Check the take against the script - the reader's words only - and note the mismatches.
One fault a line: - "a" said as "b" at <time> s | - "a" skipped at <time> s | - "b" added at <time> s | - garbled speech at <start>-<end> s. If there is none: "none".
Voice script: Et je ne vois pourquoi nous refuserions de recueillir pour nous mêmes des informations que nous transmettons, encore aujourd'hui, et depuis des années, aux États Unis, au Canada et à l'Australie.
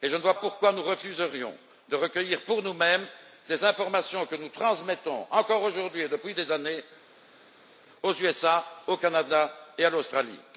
none